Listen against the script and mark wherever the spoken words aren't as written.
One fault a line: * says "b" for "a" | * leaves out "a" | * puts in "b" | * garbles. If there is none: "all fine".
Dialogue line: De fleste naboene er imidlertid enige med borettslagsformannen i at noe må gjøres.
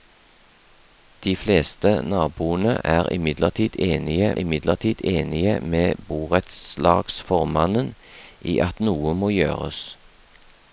* puts in "imidlertid enige"